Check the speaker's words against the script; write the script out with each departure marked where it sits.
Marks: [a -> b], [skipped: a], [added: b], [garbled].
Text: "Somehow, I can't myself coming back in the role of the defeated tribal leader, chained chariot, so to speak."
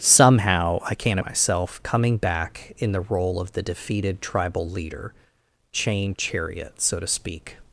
"Somehow, I can't myself coming back in the role of the defeated tribal leader, chained chariot, so to speak."